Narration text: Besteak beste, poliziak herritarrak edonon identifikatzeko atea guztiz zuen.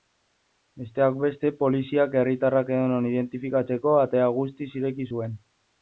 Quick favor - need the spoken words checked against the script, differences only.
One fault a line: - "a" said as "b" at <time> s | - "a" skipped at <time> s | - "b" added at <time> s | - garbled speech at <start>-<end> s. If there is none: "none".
- "ireki" added at 4.8 s